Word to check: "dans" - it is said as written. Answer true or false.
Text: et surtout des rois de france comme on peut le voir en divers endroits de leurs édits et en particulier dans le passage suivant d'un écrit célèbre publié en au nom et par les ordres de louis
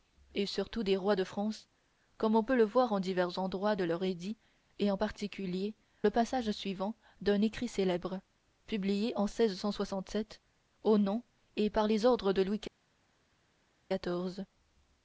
false